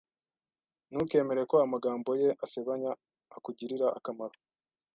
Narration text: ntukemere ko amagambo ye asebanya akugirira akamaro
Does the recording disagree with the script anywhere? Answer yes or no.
no